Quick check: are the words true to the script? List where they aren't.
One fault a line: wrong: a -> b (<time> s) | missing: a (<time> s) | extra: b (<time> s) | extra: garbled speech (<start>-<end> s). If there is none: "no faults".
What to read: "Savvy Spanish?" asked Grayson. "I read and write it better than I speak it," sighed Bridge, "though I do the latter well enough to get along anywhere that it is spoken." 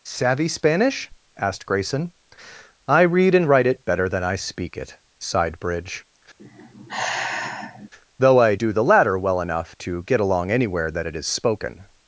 no faults